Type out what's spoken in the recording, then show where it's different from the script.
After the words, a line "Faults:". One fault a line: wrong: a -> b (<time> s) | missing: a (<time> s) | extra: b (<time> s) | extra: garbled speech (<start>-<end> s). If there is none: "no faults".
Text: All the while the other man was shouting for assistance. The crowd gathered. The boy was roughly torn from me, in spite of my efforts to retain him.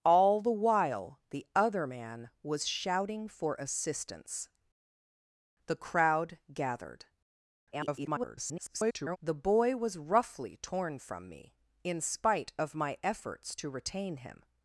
All the while the other man was shouting for assistance. The crowd gathered. [garbled] The boy was roughly torn from me, in spite of my efforts to retain him.
Faults:
extra: garbled speech (7.7-9.2 s)